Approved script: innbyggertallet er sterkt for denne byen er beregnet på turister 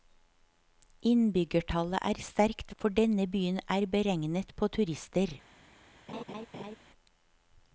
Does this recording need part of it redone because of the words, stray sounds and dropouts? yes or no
yes